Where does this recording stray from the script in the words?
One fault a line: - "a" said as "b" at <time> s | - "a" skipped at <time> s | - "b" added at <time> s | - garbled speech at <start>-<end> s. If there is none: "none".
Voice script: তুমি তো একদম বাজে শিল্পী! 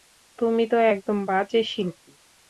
none